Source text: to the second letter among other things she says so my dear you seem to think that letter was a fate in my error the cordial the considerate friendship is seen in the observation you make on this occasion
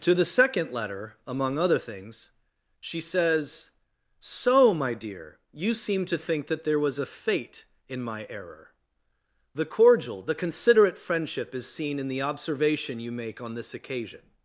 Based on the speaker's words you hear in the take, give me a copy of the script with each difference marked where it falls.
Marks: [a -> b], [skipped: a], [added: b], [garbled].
to the second letter among other things she says so my dear you seem to think that [letter -> there] was a fate in my error the cordial the considerate friendship is seen in the observation you make on this occasion